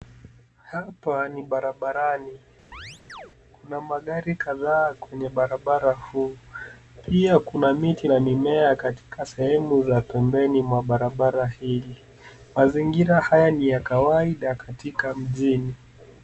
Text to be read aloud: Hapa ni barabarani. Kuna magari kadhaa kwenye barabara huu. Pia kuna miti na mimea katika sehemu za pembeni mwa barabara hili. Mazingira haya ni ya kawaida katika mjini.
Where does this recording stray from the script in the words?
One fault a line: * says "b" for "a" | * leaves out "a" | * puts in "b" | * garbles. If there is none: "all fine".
all fine